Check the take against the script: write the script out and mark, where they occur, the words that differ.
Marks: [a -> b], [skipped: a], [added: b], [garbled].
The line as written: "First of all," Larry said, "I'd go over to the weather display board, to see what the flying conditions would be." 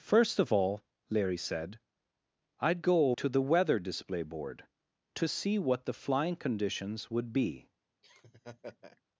"First of all," Larry said, "I'd go [skipped: over] to the weather display board, to see what the flying conditions would be."